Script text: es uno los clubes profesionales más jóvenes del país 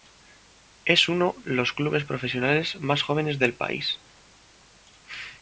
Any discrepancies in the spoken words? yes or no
no